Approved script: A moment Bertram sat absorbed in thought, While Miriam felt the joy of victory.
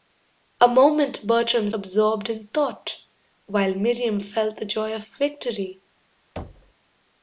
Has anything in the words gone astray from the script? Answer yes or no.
yes